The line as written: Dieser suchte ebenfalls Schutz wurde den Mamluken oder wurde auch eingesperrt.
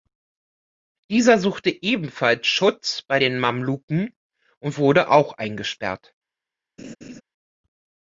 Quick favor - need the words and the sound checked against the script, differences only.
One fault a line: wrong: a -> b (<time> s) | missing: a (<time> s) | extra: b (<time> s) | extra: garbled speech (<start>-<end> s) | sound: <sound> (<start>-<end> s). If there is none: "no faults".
wrong: wurde -> bei (3.0 s)
wrong: oder -> und (4.6 s)
sound: laugh (6.8-7.2 s)